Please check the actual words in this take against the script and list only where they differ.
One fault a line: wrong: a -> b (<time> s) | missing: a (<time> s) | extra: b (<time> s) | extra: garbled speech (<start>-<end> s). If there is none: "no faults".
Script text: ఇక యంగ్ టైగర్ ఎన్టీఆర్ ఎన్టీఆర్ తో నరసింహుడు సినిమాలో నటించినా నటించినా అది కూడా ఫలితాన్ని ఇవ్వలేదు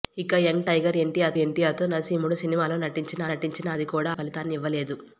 no faults